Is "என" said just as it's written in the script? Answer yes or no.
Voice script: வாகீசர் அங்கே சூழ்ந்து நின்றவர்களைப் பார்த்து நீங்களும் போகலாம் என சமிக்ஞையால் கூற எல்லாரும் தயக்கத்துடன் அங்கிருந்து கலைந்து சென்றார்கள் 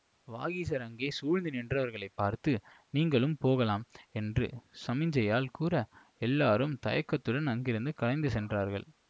no